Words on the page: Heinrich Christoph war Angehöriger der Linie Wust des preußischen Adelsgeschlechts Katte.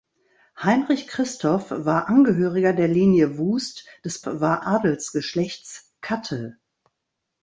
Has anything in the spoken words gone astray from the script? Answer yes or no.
yes